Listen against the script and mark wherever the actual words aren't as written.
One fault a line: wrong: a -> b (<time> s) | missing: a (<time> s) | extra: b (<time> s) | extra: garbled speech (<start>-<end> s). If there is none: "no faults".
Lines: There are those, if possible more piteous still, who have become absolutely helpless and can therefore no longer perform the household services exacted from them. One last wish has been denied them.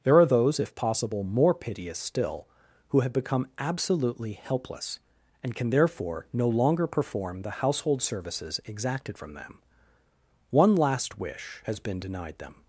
no faults